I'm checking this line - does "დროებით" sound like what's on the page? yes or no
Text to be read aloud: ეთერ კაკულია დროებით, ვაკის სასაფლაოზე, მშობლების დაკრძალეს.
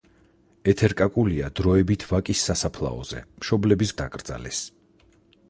yes